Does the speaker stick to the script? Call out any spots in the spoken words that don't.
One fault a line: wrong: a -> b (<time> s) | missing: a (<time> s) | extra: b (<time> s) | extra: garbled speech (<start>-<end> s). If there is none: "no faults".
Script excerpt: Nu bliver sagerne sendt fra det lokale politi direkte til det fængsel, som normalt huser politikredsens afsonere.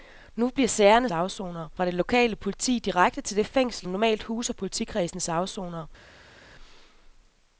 wrong: sendt -> afsonere (1.1 s)
missing: som (3.9 s)